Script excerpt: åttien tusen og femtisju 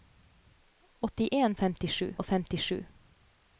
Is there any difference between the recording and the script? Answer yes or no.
yes